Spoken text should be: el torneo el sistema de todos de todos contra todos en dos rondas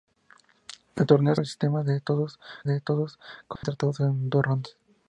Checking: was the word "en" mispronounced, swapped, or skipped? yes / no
no